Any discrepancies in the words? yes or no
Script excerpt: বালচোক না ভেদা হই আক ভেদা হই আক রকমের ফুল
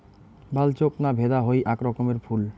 yes